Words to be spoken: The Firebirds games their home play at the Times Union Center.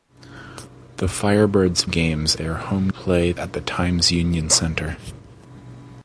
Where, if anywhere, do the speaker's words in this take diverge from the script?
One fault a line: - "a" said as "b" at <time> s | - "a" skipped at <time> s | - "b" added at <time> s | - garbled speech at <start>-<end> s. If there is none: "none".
none